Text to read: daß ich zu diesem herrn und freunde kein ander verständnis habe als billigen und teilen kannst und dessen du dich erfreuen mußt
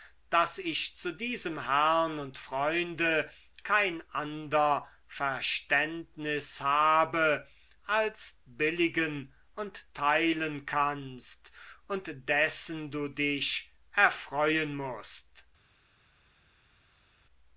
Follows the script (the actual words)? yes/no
yes